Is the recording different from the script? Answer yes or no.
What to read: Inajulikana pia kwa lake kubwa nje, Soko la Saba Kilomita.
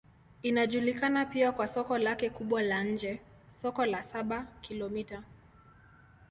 yes